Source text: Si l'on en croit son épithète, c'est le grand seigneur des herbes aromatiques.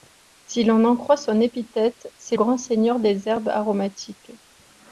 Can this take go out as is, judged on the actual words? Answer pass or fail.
fail